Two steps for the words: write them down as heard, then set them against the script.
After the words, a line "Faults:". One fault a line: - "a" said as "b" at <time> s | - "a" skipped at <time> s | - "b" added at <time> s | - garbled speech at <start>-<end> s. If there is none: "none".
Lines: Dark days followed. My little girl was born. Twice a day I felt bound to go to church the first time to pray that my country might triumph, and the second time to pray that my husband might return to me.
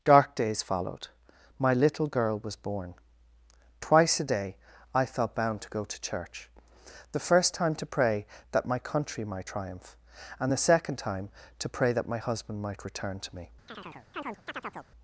Dark days followed. My little girl was born. Twice a day I felt bound to go to church the first time to pray that my country might triumph, and the second time to pray that my husband might return to me.
Faults:
none